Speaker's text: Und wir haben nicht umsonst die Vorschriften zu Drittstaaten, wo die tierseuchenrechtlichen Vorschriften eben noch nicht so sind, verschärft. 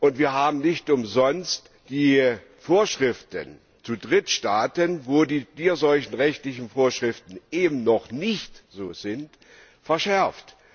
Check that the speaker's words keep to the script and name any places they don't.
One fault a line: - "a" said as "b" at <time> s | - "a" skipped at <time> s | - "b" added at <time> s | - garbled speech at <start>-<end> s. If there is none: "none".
none